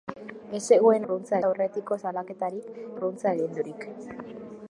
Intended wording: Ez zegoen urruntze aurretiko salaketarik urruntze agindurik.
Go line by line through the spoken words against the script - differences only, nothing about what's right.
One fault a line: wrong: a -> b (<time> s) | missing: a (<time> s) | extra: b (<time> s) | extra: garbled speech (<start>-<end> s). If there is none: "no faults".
no faults